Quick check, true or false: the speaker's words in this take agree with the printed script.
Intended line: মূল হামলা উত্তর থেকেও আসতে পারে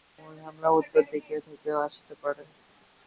false